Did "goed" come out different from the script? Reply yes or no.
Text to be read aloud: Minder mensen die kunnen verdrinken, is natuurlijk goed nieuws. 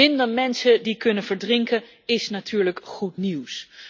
no